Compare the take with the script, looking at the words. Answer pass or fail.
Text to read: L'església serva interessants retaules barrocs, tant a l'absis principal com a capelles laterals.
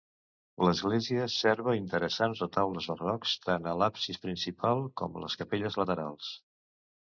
fail